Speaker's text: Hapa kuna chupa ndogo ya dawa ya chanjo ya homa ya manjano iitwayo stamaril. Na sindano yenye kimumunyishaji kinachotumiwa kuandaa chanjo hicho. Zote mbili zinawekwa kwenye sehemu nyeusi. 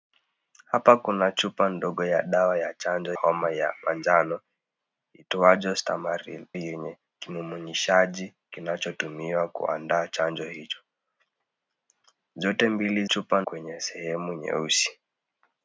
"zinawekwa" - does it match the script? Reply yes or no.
no